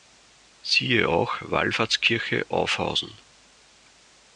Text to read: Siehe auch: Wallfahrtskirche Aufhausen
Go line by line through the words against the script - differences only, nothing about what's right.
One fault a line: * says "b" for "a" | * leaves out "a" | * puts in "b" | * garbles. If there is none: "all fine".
all fine